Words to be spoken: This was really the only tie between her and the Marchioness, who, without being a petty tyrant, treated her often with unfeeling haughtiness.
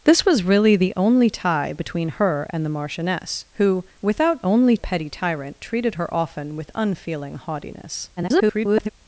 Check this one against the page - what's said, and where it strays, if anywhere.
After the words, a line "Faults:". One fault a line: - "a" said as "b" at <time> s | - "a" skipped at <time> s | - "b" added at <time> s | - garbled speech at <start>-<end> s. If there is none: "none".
This was really the only tie between her and the Marchioness, who, without only a petty tyrant, treated her often with unfeeling haughtiness. [garbled]
Faults:
- "being" said as "only" at 4.4 s
- garbled speech at 8.2-8.9 s